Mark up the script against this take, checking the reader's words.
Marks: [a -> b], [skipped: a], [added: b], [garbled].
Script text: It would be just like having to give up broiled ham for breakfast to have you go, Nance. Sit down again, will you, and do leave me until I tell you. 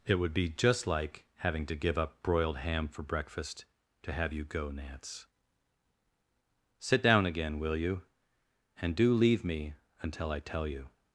It would be just like having to give up broiled ham for breakfast to have you go, Nance. Sit down again, will you, and do leave me until I tell you.